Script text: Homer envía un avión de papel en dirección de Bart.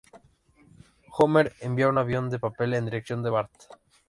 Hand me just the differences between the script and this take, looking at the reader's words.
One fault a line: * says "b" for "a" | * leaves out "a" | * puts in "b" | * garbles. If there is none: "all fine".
all fine